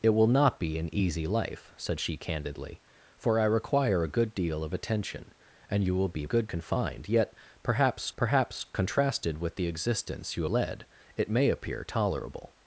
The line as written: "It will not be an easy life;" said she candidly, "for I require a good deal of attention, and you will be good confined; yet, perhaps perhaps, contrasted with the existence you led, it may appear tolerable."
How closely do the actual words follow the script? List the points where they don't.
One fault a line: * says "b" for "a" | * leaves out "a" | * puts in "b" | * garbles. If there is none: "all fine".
all fine